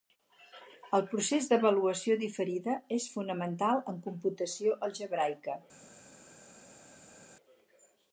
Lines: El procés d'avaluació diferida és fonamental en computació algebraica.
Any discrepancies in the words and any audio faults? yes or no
no